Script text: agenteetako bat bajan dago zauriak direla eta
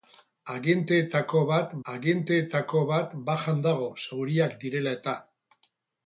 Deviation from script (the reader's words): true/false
true